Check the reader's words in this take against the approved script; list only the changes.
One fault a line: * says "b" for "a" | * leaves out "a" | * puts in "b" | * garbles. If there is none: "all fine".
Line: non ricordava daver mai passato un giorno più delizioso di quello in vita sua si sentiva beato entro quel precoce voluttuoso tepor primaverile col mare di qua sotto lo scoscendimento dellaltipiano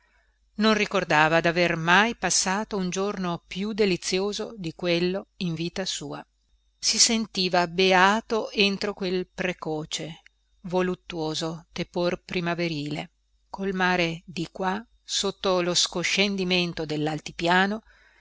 all fine